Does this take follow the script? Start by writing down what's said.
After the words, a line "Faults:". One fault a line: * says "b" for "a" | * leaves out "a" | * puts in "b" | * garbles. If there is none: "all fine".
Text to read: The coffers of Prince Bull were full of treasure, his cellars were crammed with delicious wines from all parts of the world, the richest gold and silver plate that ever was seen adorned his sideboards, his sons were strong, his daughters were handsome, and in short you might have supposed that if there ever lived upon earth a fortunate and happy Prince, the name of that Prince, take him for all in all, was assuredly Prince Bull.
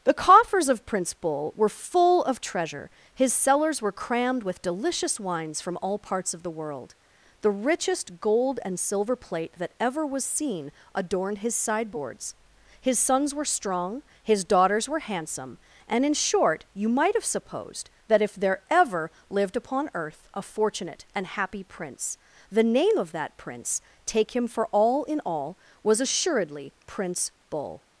The coffers of Prince Bull were full of treasure, his cellars were crammed with delicious wines from all parts of the world, the richest gold and silver plate that ever was seen adorned his sideboards, his sons were strong, his daughters were handsome, and in short you might have supposed that if there ever lived upon earth a fortunate and happy Prince, the name of that Prince, take him for all in all, was assuredly Prince Bull.
Faults:
all fine